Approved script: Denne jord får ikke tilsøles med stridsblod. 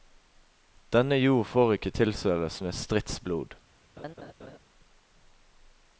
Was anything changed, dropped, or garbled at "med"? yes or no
no